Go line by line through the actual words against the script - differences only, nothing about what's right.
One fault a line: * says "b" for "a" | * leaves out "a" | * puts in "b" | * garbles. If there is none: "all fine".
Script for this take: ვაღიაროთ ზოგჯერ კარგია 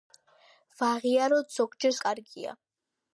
all fine